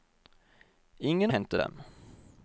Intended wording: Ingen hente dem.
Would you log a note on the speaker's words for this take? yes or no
no